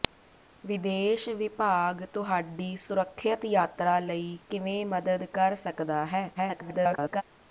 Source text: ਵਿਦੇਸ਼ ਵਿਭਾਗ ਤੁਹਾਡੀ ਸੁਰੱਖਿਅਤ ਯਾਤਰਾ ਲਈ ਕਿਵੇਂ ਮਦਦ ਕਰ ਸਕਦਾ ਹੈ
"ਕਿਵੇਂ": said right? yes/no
yes